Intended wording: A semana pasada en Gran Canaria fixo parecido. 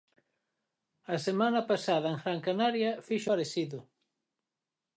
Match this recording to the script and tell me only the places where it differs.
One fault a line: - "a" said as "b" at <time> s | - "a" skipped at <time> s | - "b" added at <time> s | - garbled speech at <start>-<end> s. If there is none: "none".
none